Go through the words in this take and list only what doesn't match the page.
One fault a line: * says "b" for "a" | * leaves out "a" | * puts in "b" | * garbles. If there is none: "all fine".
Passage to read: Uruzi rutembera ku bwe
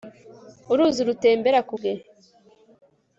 all fine